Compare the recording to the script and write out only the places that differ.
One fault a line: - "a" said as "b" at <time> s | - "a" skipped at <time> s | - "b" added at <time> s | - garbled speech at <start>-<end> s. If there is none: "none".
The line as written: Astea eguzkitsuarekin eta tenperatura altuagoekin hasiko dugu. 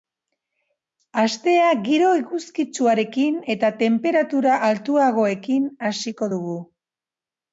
- "giro" added at 1.9 s